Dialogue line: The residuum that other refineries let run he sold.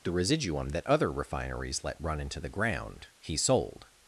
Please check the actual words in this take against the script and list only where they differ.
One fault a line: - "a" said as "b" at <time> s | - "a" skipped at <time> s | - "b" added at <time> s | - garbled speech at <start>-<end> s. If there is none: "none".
- "into the ground" added at 2.2 s